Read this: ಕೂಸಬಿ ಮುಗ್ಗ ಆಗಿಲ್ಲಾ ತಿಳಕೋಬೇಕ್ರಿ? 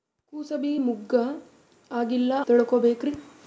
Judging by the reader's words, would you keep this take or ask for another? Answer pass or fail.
pass